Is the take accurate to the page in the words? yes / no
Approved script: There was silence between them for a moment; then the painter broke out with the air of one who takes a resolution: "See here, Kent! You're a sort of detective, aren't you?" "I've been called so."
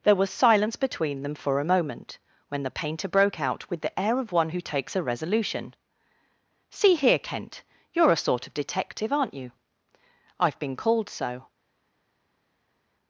no